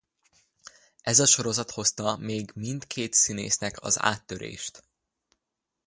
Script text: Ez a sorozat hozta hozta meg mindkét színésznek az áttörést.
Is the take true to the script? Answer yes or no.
no